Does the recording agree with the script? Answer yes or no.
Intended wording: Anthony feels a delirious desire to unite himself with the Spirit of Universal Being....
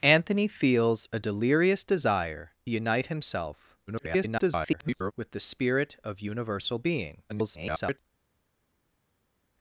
no